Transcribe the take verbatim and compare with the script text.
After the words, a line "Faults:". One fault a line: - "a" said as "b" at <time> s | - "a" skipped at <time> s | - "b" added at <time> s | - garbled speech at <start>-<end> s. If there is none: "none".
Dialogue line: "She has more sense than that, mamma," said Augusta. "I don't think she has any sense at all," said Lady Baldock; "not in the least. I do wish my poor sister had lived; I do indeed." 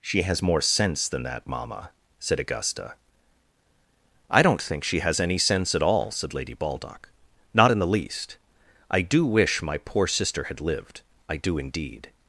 "She has more sense than that, mamma," said Augusta. "I don't think she has any sense at all," said Lady Baldock; "not in the least. I do wish my poor sister had lived; I do indeed."
Faults:
none